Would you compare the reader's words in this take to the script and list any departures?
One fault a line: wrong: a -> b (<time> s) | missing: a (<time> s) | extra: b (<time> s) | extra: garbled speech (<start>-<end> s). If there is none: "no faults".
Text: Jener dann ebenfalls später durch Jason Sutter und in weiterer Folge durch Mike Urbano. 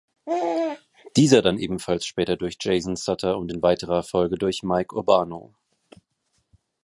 wrong: Jener -> Dieser (1.1 s)